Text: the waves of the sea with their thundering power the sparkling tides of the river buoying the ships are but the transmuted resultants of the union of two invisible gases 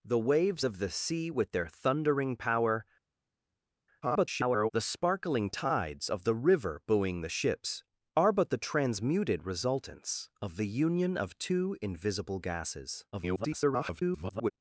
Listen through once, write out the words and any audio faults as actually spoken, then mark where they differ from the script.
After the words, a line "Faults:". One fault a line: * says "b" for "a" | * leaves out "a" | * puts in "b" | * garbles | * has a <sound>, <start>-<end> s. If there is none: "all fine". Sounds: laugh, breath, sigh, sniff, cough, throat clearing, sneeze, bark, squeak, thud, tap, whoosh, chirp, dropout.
the waves of the sea with their thundering power [garbled] the sparkling tides of the river buoying the ships are but the transmuted resultants of the union of two invisible gases [garbled]
Faults:
* garbles
* garbles